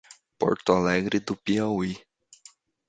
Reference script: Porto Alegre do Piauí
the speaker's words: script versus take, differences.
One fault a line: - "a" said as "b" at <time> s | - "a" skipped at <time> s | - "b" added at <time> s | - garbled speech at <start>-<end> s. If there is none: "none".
none